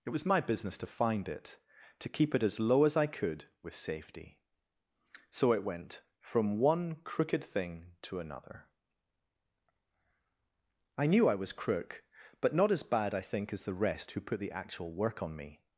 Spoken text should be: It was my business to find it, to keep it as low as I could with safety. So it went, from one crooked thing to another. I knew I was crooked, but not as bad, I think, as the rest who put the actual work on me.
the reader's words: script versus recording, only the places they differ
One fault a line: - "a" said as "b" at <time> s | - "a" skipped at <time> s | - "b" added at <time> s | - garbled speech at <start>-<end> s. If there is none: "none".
- "crooked" said as "crook" at 11.5 s